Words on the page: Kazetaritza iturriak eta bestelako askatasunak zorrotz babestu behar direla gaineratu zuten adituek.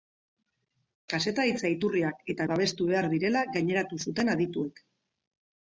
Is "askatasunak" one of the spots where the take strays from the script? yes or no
yes